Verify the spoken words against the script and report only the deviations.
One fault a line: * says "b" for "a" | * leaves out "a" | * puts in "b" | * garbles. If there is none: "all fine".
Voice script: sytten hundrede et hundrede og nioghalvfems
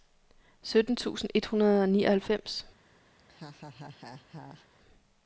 * says "tusind" for "hundrede"